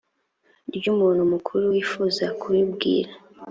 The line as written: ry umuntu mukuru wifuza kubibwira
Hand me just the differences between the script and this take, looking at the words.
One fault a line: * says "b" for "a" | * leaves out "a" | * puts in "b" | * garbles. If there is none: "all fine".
all fine